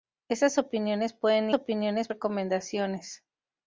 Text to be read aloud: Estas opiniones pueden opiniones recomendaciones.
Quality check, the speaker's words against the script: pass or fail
pass